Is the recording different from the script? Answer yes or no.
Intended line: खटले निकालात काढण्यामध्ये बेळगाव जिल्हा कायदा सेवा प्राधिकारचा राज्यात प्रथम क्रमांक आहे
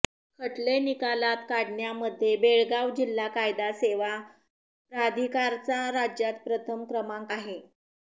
no